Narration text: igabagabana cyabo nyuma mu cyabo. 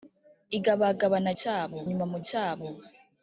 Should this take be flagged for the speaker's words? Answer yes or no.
no